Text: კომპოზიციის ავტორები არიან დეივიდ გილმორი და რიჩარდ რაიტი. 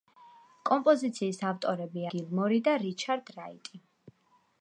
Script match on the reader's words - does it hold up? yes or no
no